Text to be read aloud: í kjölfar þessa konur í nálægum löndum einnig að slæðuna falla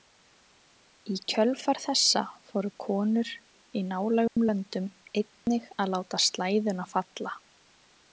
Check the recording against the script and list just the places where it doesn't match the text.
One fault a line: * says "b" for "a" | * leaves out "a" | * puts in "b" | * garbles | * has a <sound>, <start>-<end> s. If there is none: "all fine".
* puts in "fóru"
* has a dropout, 4.3-4.4 s
* has a dropout, 5.4-5.5 s
* puts in "láta"